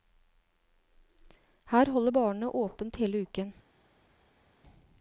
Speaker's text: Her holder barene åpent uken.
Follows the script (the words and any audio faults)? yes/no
no